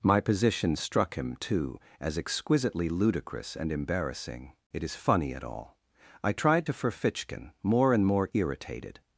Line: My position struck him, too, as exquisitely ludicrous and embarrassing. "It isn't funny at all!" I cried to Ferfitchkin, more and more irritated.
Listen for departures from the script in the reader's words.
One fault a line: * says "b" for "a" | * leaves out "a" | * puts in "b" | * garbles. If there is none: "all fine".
* says "is" for "isn't"
* says "tried" for "cried"